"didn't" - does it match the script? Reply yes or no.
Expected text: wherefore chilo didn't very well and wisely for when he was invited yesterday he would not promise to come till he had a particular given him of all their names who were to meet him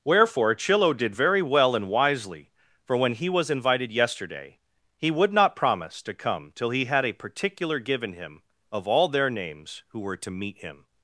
no